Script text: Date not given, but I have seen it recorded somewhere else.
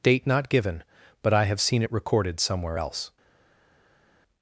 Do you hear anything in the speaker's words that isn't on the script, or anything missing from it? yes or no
no